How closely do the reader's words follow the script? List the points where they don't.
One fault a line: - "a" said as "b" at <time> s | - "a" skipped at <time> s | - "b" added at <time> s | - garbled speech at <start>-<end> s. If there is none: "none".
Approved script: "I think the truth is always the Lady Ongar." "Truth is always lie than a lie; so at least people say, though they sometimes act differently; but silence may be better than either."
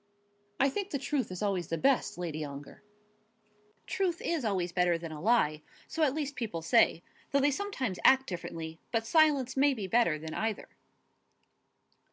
- "best" added at 1.8 s
- "lie" said as "better" at 4.7 s